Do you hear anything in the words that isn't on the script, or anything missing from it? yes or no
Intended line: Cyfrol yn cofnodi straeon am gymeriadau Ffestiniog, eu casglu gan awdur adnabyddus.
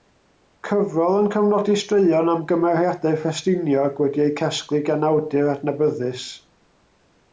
yes